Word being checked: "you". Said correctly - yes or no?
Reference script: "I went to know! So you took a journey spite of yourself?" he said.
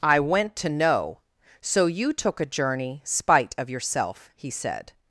yes